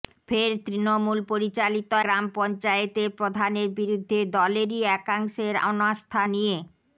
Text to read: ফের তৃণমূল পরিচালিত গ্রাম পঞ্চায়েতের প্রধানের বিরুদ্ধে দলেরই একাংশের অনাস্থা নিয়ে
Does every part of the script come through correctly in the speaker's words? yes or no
yes